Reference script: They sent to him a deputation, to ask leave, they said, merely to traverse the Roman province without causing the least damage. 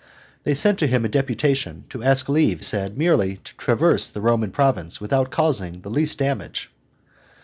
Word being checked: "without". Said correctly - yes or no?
yes